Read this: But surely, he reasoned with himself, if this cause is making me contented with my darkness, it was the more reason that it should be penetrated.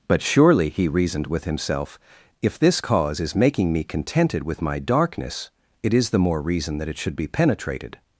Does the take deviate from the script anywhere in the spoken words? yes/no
yes